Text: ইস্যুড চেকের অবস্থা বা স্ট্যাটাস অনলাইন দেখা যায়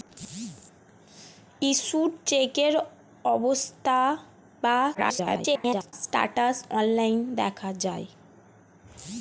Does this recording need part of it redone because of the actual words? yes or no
yes